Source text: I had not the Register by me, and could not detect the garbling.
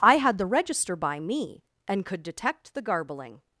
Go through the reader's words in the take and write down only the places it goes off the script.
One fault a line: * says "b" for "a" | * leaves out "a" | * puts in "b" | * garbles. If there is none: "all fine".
* leaves out "not"
* leaves out "not"